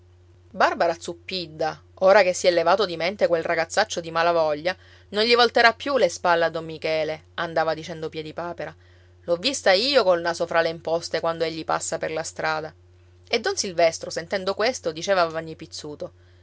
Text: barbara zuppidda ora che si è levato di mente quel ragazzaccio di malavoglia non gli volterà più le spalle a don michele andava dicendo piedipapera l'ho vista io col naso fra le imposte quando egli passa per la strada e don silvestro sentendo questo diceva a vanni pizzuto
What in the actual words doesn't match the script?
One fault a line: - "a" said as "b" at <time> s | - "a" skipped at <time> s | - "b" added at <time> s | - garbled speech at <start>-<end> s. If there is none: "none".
none